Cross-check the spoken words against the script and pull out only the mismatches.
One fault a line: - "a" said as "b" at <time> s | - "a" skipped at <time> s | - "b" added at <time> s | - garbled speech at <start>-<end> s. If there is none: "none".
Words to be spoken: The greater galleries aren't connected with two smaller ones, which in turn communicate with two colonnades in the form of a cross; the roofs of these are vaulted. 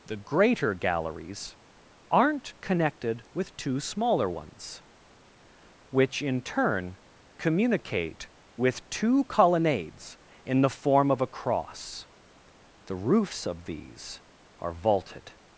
none